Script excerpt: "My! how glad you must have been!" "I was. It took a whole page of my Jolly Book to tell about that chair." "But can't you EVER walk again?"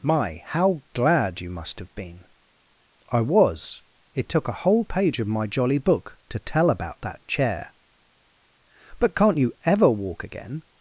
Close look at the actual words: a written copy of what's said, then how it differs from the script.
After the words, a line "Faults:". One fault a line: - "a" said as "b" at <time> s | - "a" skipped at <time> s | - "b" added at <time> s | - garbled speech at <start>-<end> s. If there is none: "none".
"My! how glad you must have been!" "I was. It took a whole page of my Jolly Book to tell about that chair." "But can't you EVER walk again?"
Faults:
none